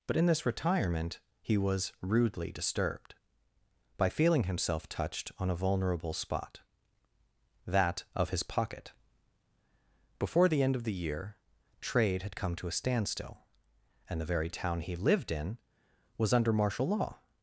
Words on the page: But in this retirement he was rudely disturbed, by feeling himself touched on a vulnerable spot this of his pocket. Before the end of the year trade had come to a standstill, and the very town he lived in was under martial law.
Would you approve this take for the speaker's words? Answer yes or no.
no